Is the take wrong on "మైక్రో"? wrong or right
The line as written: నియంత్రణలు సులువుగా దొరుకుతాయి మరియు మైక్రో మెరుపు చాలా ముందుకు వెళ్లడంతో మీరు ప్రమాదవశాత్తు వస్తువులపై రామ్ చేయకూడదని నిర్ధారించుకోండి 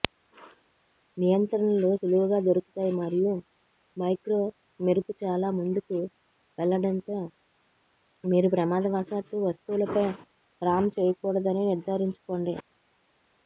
right